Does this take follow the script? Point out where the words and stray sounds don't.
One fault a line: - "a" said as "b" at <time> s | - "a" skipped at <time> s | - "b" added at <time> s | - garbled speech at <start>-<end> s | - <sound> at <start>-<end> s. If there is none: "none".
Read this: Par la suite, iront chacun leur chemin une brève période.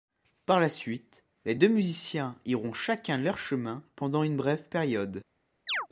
- "les deux musiciens" added at 1.4 s
- "pendant" added at 3.9 s
- chirp at 5.7-5.9 s